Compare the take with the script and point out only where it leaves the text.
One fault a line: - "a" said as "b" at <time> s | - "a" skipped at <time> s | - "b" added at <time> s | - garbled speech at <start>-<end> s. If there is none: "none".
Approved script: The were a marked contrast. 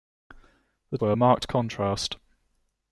none